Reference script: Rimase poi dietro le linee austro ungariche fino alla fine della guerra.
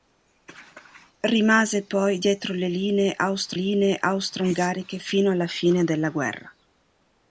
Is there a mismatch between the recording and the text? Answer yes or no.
yes